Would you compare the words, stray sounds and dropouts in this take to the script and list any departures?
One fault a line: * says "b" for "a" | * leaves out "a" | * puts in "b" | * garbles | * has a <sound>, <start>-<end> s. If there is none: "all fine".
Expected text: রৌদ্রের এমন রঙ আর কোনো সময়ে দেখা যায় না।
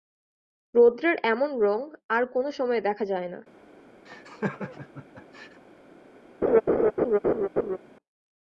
* has a laugh, 4.1-5.6 s
* has a laugh, 6.4-7.8 s